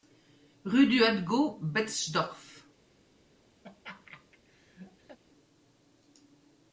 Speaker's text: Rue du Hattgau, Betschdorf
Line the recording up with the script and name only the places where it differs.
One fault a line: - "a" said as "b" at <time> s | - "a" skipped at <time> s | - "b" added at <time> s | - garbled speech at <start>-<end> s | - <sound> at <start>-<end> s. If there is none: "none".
- laugh at 3.6-5.2 s